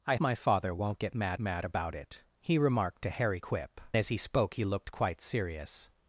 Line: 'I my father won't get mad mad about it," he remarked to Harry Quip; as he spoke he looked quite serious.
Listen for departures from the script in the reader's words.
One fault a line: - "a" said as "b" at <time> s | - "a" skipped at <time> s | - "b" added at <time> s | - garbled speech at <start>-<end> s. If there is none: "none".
none